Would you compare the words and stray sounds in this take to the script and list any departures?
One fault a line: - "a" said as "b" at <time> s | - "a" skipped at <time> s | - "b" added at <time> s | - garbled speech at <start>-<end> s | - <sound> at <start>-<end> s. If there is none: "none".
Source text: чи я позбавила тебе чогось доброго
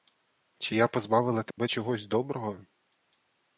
- dropout at 1.5-1.6 s